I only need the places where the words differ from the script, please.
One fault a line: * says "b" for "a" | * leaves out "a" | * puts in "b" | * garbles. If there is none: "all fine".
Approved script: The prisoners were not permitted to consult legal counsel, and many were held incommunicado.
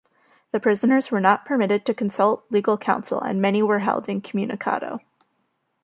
all fine